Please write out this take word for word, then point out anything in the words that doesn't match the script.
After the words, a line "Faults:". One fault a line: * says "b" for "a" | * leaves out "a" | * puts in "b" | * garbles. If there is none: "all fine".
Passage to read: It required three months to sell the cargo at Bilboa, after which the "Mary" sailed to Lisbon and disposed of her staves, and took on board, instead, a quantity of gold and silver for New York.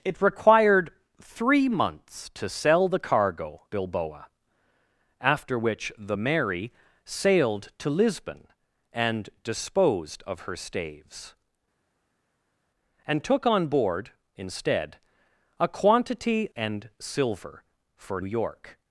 It required three months to sell the cargo Bilboa, after which the "Mary" sailed to Lisbon and disposed of her staves, and took on board, instead, a quantity and silver for York.
Faults:
* leaves out "at"
* leaves out "of gold"
* leaves out "New"